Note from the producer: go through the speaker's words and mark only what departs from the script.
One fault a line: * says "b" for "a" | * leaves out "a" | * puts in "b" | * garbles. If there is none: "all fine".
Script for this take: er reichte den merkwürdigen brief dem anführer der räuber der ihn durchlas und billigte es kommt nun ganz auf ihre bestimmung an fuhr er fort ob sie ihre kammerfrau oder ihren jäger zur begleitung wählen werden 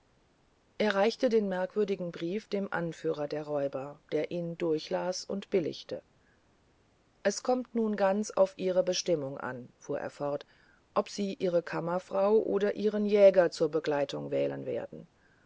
all fine